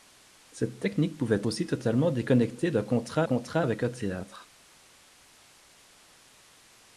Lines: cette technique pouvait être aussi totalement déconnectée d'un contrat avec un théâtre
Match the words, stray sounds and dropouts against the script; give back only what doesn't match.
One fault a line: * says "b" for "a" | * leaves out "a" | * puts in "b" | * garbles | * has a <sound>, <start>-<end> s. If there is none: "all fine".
* leaves out "être"
* puts in "contrat"